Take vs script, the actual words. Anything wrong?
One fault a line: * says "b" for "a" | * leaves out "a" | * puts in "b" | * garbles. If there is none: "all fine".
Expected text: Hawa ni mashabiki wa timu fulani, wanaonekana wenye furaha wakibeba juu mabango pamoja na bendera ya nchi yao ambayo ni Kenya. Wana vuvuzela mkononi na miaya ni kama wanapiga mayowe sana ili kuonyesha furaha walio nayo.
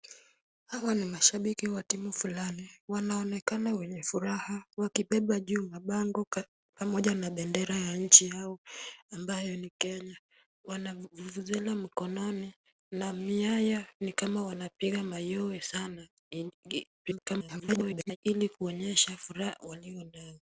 * garbles